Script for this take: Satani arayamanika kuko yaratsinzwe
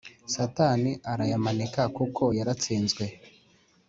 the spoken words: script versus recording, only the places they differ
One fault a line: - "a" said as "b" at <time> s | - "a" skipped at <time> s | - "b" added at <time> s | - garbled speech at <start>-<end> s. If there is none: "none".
none